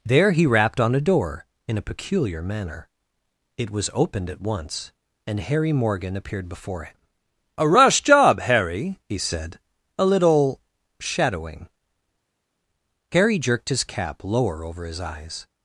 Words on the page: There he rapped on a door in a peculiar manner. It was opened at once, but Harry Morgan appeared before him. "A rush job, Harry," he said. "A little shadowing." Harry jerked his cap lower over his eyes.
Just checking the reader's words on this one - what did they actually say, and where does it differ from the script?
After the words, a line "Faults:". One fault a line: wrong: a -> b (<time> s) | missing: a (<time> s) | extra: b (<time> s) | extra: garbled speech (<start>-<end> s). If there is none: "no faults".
There he rapped on a door in a peculiar manner. It was opened at once, and Harry Morgan appeared before him. "A rush job, Harry," he said. "A little shadowing." Harry jerked his cap lower over his eyes.
Faults:
wrong: but -> and (5.3 s)